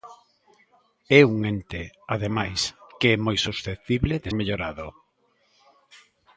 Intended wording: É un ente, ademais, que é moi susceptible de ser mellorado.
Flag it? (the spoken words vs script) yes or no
yes